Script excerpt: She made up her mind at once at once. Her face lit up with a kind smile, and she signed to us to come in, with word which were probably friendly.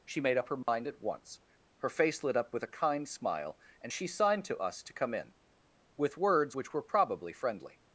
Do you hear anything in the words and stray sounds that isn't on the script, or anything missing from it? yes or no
yes